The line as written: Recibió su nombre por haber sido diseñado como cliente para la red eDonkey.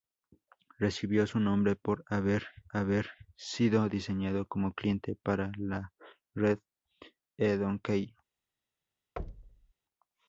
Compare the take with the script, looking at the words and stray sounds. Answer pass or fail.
fail